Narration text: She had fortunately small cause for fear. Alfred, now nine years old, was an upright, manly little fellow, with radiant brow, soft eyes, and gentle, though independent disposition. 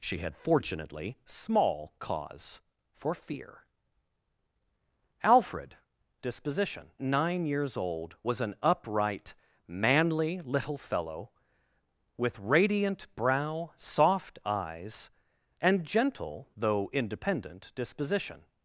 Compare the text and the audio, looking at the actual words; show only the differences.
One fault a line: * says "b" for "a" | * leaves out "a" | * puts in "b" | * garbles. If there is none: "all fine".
* says "disposition" for "now"